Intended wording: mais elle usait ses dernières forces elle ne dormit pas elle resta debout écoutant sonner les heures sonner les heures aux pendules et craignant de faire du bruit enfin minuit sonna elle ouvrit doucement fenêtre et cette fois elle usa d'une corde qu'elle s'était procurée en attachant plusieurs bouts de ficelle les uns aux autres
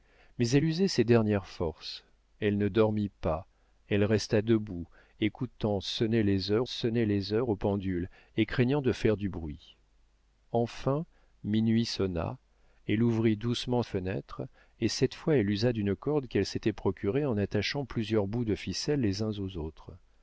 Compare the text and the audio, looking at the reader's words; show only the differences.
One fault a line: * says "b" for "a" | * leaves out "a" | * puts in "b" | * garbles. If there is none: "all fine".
all fine